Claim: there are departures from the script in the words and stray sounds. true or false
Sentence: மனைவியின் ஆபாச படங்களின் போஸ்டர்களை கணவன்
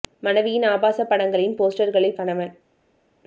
false